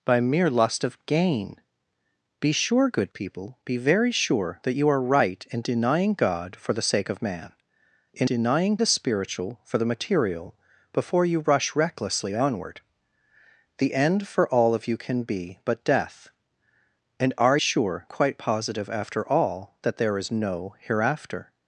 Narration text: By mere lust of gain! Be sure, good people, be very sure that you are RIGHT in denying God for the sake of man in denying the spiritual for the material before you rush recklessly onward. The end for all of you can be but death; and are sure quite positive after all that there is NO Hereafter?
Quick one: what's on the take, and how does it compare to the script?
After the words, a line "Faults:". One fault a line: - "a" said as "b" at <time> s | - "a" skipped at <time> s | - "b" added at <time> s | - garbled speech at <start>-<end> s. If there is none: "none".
By mere lust of gain! Be sure, good people, be very sure that you are RIGHT in denying God for the sake of man in denying the spiritual for the material before you rush recklessly onward. The end for all of you can be but death; and are sure quite positive after all that there is NO Hereafter?
Faults:
none